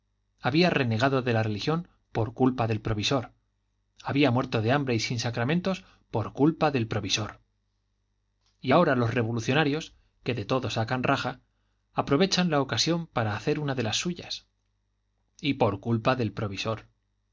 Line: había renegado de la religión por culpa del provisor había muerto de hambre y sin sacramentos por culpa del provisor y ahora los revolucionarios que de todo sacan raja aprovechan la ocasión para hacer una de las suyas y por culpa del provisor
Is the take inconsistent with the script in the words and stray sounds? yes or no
no